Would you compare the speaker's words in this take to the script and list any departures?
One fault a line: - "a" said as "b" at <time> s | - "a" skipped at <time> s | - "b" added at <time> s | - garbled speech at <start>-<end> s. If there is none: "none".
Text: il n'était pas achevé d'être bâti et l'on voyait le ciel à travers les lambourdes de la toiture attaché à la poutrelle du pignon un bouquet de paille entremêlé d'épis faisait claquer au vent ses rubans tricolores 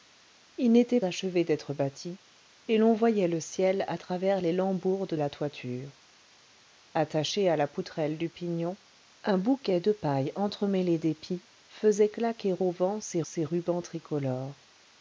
- "pas" skipped at 1.0 s
- "de" skipped at 5.1 s
- "ses" added at 13.2 s